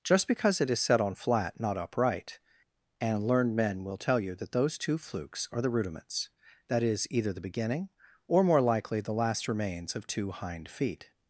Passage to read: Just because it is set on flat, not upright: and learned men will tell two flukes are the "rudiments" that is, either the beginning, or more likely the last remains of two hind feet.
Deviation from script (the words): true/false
true